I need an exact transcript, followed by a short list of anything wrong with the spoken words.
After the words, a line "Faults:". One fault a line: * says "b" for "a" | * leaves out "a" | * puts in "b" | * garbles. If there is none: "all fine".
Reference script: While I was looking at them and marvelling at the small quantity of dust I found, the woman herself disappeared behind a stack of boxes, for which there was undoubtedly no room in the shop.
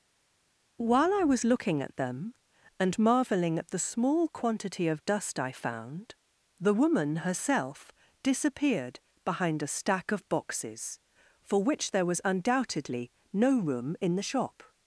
While I was looking at them and marvelling at the small quantity of dust I found, the woman herself disappeared behind a stack of boxes, for which there was undoubtedly no room in the shop.
Faults:
all fine